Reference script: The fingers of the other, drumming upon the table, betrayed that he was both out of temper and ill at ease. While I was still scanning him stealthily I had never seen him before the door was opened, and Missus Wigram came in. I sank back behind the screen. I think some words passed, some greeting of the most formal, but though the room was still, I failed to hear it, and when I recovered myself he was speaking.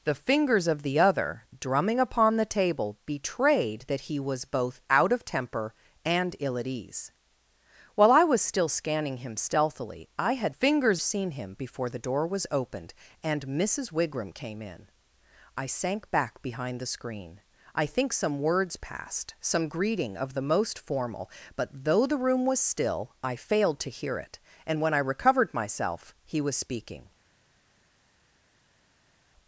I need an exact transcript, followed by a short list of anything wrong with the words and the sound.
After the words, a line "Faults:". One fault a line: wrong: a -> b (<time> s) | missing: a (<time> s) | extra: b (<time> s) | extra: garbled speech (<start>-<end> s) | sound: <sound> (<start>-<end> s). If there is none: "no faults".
The fingers of the other, drumming upon the table, betrayed that he was both out of temper and ill at ease. While I was still scanning him stealthily I had fingers seen him before the door was opened, and Missus Wigram came in. I sank back behind the screen. I think some words passed, some greeting of the most formal, but though the room was still, I failed to hear it, and when I recovered myself he was speaking.
Faults:
wrong: never -> fingers (10.5 s)